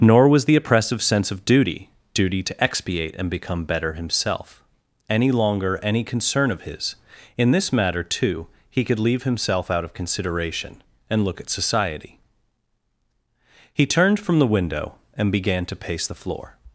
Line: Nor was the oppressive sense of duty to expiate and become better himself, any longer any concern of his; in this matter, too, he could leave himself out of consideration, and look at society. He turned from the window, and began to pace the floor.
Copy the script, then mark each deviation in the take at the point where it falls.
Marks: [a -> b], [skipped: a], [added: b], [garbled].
Nor was the oppressive sense of duty [added: duty] to expiate and become better himself, any longer any concern of his; in this matter, too, he could leave himself out of consideration, and look at society. He turned from the window, and began to pace the floor.